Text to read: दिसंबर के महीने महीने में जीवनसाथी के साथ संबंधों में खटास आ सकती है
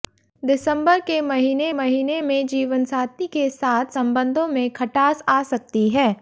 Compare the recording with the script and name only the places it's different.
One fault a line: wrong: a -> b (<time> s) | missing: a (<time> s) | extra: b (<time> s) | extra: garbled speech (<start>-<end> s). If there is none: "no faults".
no faults